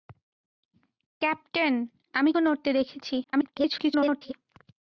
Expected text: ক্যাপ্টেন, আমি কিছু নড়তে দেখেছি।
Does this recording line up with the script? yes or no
no